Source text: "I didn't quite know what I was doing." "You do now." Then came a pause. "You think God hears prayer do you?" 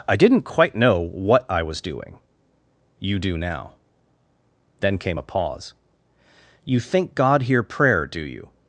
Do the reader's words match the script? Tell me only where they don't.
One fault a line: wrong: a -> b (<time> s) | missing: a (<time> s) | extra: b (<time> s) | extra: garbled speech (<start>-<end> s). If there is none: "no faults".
wrong: hears -> hear (7.4 s)